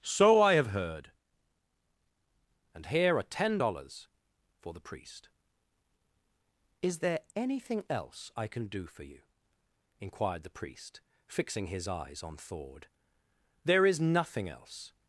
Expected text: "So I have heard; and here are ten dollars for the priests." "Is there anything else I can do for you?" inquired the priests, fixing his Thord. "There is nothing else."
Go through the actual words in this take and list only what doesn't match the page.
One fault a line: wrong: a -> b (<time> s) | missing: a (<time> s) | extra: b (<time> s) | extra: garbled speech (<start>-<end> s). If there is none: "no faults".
wrong: priests -> priest (4.8 s)
wrong: priests -> priest (10.6 s)
extra: eyes on (11.9 s)